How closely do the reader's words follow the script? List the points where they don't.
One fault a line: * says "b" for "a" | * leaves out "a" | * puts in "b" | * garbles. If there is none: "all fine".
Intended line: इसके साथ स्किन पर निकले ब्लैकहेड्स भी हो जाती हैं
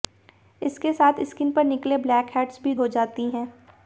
all fine